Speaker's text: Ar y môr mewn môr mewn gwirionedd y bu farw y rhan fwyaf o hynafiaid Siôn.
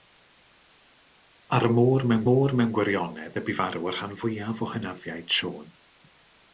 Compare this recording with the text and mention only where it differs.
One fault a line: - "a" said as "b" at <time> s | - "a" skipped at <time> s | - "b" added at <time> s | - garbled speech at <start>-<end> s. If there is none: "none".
none